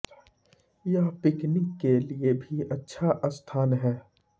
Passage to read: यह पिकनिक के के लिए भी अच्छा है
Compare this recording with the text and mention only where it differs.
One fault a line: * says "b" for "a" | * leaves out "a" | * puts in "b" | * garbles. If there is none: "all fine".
* leaves out "के"
* puts in "स्थान"